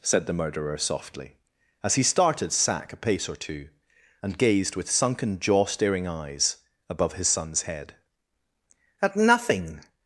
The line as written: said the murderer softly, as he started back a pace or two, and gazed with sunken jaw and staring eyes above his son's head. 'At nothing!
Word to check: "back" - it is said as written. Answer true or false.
false